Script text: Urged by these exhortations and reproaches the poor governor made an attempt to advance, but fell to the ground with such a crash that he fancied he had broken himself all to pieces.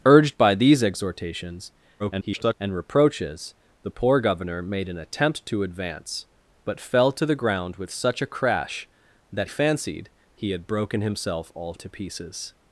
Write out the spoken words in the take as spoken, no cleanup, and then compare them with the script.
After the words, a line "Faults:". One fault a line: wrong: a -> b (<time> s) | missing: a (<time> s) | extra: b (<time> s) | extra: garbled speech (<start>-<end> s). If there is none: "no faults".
Urged by these exhortations [garbled] and reproaches the poor governor made an attempt to advance, but fell to the ground with such a crash that fancied he had broken himself all to pieces.
Faults:
extra: garbled speech (2.0-2.5 s)
missing: he (9.5 s)